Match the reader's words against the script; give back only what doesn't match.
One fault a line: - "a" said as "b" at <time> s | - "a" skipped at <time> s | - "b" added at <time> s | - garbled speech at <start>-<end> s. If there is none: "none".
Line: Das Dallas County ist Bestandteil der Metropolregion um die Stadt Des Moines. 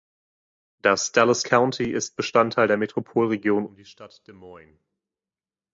none